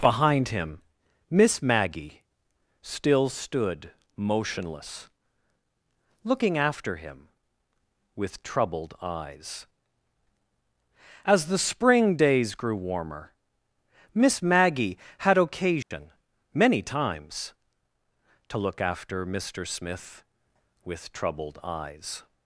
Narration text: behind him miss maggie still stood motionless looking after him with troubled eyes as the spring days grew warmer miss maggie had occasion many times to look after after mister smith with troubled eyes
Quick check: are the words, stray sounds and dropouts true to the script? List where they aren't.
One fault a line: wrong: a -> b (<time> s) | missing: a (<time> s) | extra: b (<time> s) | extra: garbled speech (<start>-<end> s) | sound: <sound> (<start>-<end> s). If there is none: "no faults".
sound: dropout (15.8-15.9 s)
missing: after (19.2 s)